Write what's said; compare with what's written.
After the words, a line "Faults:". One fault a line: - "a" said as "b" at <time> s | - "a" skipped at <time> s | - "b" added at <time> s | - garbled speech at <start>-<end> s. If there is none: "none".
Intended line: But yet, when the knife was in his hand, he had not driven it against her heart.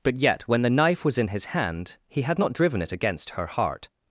But yet, when the knife was in his hand, he had not driven it against her heart.
Faults:
none